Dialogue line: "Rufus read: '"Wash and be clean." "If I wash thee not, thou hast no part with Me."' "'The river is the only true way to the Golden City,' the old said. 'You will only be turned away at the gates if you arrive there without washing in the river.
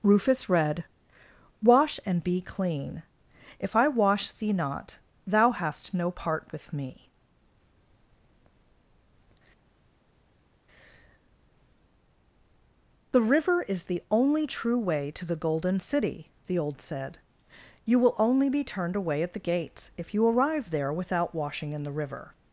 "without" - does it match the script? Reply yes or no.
yes